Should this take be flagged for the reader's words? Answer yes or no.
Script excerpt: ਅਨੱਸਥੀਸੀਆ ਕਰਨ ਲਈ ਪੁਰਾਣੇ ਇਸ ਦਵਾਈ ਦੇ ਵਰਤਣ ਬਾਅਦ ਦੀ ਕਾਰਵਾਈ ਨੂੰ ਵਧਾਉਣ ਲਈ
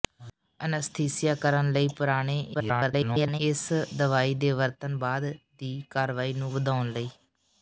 yes